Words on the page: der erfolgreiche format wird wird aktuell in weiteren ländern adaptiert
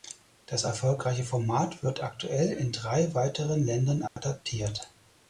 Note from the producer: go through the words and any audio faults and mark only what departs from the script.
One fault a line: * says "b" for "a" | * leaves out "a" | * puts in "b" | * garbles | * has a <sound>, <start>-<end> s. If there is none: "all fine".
* says "das" for "der"
* leaves out "wird"
* puts in "drei"
* has a dropout, 4.1-4.2 s